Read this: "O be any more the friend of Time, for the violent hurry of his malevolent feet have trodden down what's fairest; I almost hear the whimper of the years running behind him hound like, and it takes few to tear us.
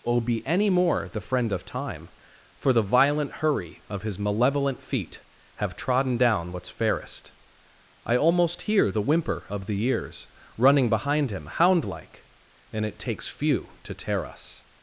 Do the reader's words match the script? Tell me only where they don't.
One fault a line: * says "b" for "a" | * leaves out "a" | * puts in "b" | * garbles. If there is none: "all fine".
all fine